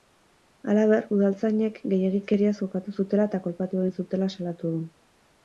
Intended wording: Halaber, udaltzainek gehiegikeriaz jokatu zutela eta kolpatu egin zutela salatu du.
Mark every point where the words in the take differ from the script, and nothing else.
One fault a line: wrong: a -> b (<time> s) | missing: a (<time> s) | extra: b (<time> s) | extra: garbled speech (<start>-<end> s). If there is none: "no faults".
no faults